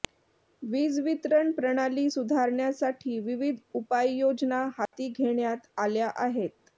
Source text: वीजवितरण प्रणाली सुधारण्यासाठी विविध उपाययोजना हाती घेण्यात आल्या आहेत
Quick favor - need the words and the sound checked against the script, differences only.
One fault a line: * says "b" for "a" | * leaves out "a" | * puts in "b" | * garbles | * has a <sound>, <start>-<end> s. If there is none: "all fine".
* has a dropout, 4.9-4.9 s